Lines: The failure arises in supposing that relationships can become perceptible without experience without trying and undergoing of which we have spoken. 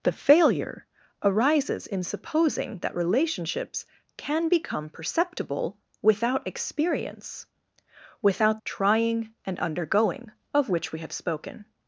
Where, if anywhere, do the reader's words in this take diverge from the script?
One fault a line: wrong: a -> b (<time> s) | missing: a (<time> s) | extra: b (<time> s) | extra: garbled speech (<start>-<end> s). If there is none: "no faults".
no faults